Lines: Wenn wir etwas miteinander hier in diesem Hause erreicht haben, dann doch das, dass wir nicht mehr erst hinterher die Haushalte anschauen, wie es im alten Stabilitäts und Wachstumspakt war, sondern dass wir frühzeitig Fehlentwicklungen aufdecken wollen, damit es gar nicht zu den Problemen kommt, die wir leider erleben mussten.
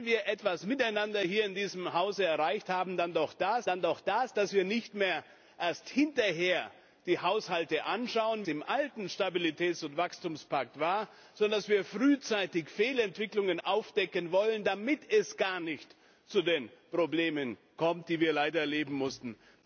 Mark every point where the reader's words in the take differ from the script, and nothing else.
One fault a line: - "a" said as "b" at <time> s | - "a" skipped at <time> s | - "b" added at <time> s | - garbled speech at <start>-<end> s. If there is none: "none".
- "dann doch das" added at 3.7 s
- "wie es" skipped at 8.5 s